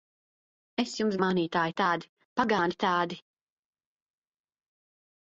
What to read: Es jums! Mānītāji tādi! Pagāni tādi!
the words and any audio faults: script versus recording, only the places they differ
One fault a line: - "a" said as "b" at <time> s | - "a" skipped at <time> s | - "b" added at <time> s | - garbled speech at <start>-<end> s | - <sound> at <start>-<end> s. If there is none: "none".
none